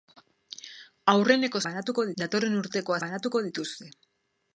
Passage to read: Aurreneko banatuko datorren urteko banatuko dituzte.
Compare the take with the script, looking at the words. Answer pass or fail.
pass